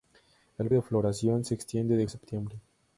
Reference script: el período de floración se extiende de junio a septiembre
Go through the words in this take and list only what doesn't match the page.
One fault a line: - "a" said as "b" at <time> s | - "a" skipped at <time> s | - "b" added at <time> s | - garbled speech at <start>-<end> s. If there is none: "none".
- "período" skipped at 0.7 s
- "junio" skipped at 2.1 s